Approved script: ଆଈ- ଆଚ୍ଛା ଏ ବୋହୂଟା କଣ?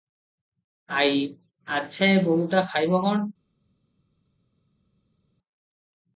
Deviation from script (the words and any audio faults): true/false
true